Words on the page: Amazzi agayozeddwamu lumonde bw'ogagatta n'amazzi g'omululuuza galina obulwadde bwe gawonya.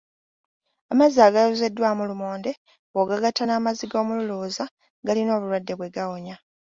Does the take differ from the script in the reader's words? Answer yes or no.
no